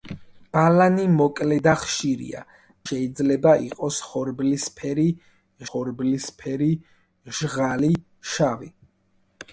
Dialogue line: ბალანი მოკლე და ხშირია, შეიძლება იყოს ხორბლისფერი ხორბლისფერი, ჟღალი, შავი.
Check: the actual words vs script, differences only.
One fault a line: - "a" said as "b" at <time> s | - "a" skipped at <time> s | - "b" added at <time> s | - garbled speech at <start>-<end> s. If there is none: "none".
none